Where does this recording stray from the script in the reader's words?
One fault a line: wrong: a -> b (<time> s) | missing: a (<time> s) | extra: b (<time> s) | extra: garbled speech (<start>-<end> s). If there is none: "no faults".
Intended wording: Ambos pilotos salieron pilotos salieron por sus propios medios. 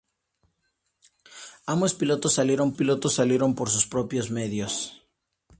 no faults